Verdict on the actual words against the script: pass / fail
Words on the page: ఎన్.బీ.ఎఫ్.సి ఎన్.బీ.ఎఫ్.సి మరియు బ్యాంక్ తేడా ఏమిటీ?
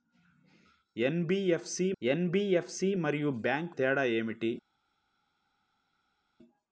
pass